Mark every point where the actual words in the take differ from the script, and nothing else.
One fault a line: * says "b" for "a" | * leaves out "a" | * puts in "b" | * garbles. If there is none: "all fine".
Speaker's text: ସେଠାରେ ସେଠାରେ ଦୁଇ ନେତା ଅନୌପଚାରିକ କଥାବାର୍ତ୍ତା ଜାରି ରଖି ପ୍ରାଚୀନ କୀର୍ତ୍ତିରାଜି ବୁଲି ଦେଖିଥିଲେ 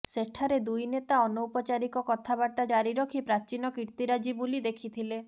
* leaves out "ସେଠାରେ"